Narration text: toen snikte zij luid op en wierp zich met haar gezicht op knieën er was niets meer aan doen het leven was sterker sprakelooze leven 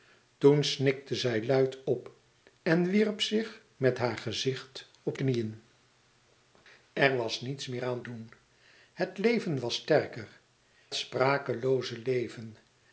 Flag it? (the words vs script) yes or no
no